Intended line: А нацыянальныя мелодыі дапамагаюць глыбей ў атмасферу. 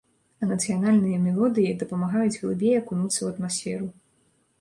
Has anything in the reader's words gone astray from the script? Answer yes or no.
yes